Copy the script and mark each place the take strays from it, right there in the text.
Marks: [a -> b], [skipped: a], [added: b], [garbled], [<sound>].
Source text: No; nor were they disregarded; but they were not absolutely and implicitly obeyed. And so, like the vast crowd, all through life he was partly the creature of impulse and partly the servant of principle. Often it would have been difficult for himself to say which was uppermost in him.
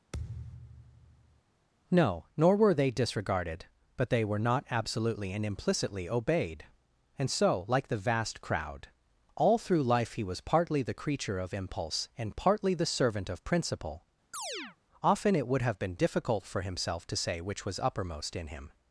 [thud] No; nor were they disregarded; but they were not absolutely and implicitly obeyed. And so, like the vast crowd, all through life he was partly the creature of impulse and partly the servant of principle. [chirp] Often it would have been difficult for himself to say which was uppermost in him.